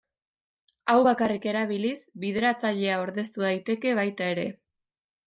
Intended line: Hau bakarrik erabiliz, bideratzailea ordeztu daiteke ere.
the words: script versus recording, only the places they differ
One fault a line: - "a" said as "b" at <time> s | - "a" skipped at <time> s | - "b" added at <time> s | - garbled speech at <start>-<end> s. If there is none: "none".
- "baita" added at 4.0 s